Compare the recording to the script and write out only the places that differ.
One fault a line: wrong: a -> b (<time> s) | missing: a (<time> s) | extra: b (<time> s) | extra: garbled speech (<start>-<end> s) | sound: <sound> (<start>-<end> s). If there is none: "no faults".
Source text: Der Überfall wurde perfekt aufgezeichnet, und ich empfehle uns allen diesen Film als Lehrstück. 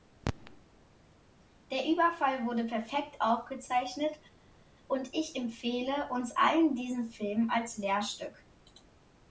no faults